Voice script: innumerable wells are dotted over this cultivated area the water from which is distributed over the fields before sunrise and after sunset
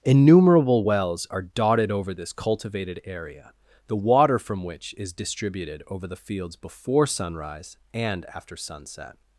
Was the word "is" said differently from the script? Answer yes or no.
no